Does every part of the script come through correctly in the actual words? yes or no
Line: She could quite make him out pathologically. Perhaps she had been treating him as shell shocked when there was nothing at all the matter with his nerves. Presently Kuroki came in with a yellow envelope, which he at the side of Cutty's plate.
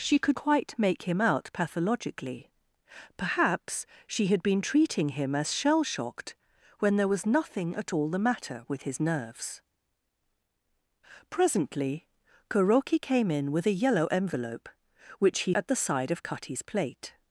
yes